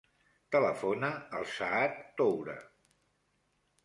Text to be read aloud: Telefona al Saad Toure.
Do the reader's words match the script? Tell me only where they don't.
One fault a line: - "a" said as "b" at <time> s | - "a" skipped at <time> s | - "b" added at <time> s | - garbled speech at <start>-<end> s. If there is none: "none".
none